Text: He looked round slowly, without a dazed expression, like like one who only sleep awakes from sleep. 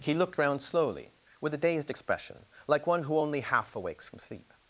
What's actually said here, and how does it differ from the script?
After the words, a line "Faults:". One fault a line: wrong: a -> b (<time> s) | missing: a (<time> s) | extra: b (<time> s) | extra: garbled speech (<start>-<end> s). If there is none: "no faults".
He looked round slowly, with a dazed expression, like one who only half awakes from sleep.
Faults:
wrong: without -> with (1.4 s)
missing: like (2.9 s)
wrong: sleep -> half (3.4 s)